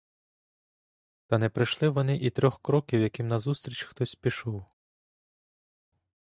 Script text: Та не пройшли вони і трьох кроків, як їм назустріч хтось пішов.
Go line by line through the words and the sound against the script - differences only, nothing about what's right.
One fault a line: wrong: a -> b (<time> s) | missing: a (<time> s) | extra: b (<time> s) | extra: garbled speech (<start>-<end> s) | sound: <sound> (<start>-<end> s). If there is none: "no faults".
no faults